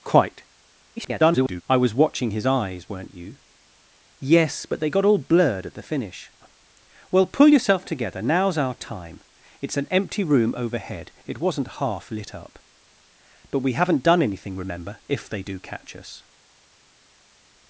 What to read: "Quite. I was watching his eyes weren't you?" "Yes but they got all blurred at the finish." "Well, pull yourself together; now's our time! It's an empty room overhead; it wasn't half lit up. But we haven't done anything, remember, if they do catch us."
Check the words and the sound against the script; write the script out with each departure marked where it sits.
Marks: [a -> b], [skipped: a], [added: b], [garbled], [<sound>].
"Quite. [garbled] I was watching his eyes weren't you?" "Yes but they got all blurred at the finish." "Well, pull yourself together; now's our time! It's an empty room overhead; it wasn't half lit up. But we haven't done anything, remember, if they do catch us."